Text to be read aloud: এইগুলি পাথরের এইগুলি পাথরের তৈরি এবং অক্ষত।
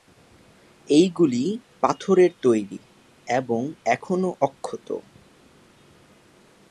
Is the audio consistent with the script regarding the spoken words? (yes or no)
no